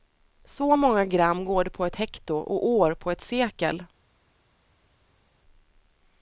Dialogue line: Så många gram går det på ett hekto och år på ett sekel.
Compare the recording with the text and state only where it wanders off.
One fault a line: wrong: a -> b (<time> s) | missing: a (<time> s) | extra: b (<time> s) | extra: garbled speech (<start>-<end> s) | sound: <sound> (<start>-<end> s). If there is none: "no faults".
no faults